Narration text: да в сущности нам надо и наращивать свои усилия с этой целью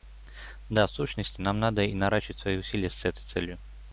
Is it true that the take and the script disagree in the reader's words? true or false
false